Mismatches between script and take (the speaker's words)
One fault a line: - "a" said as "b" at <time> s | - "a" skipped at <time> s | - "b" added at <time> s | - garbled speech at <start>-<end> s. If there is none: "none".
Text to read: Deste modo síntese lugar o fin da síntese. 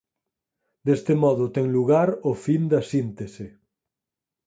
- "síntese" said as "ten" at 1.6 s